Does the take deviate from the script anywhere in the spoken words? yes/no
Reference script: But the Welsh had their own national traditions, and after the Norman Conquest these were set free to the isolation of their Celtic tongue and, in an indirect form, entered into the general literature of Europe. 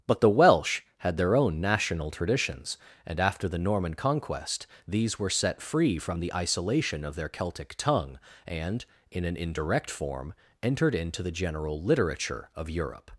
yes